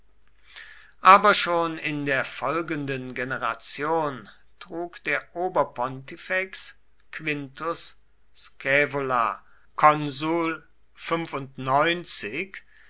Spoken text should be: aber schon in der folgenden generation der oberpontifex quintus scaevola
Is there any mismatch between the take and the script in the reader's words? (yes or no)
yes